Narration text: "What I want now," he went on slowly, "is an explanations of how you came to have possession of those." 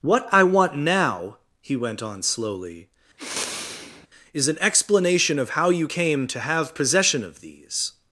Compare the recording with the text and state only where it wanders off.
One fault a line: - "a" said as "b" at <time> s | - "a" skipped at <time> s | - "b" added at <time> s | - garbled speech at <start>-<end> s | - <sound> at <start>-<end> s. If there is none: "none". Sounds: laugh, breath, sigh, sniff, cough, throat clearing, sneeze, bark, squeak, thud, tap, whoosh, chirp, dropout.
- sniff at 3.2-4.1 s
- "explanations" said as "explanation" at 4.6 s
- "those" said as "these" at 7.4 s